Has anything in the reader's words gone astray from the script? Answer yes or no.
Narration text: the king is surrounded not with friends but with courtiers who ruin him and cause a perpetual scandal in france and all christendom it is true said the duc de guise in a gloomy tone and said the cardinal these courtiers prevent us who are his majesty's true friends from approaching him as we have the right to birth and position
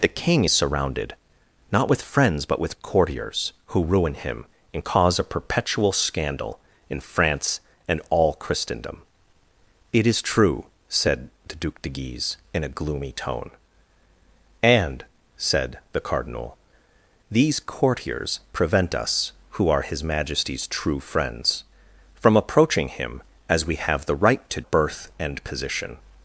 no